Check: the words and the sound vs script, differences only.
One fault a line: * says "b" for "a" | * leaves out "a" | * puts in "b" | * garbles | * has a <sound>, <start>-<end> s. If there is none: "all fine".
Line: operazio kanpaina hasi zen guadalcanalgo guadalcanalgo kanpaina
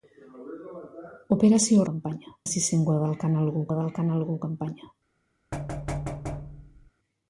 * has a thud, 5.5-6.9 s